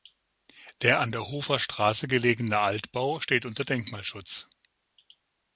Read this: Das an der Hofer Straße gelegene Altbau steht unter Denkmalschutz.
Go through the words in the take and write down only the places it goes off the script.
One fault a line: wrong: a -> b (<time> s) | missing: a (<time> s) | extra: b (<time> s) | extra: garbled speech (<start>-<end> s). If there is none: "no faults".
wrong: Das -> Der (0.8 s)